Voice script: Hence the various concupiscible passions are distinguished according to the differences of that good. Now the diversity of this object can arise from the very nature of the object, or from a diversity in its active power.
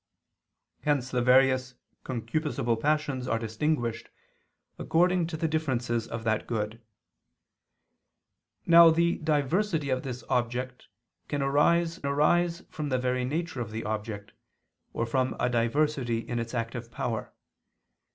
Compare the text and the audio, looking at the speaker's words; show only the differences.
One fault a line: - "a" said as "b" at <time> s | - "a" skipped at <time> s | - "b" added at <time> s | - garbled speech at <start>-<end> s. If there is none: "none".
- "arise" added at 12.1 s